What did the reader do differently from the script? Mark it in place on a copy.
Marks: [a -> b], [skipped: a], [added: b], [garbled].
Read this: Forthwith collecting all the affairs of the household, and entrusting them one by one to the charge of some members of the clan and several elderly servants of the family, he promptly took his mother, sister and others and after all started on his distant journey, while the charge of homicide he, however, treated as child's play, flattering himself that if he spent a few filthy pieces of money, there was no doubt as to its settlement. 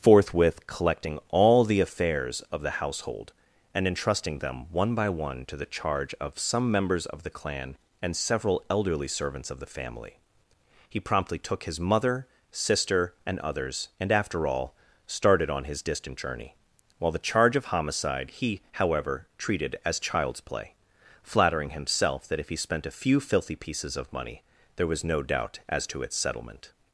Forthwith collecting all the affairs of the household, and entrusting them one by one to the charge of some members of the clan and several elderly servants of the family, he promptly took his mother, sister and others and after all started on his distant journey, while the charge of homicide he, however, treated as child's play, flattering himself that if he spent a few filthy pieces of money, there was no doubt as to its settlement.